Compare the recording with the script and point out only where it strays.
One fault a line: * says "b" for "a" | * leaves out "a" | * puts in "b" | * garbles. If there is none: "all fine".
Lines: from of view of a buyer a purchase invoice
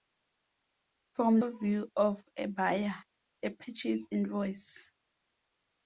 all fine